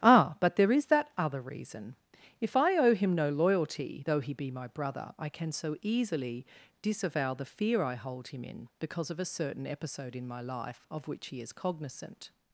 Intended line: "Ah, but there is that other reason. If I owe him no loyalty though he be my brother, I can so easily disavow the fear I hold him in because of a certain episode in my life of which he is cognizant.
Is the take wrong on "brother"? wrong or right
right